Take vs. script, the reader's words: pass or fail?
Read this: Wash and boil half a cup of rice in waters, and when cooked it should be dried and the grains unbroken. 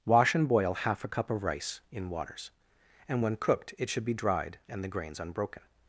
pass